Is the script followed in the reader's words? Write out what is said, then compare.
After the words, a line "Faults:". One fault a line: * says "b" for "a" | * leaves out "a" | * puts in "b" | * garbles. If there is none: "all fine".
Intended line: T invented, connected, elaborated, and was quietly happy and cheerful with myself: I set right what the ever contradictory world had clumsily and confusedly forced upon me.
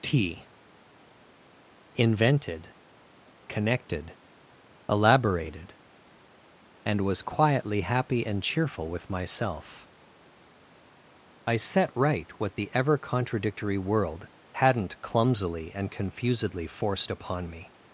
T invented, connected, elaborated, and was quietly happy and cheerful with myself: I set right what the ever contradictory world hadn't clumsily and confusedly forced upon me.
Faults:
* says "hadn't" for "had"